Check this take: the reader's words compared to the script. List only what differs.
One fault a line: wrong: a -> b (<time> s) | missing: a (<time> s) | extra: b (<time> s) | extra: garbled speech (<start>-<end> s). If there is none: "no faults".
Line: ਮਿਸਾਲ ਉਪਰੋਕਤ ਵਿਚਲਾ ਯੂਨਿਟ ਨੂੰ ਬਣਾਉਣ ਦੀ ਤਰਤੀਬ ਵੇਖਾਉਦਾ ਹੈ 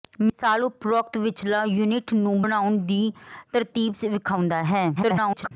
extra: garbled speech (5.0-5.5 s)